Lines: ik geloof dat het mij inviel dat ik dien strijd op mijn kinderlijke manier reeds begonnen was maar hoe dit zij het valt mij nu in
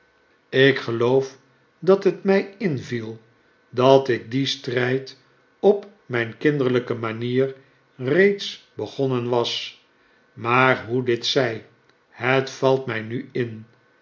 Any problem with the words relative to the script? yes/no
no